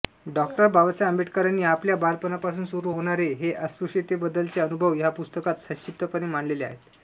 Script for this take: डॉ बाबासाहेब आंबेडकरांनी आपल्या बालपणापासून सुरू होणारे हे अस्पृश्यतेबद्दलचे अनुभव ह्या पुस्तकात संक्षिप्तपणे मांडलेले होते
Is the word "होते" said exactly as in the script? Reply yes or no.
no